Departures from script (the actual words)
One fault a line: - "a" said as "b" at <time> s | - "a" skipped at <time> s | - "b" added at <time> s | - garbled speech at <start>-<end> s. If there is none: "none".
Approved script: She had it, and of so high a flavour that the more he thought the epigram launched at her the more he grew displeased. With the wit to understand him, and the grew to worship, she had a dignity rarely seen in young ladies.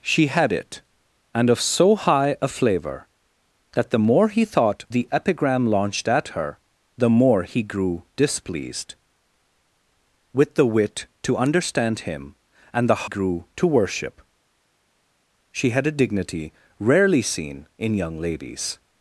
none